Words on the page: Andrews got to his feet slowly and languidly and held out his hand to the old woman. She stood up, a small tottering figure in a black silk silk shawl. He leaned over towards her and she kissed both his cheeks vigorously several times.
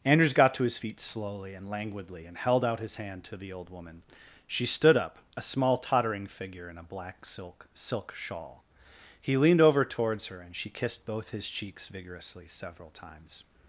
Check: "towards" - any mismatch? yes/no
no